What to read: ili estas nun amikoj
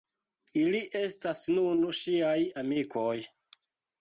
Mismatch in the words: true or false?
true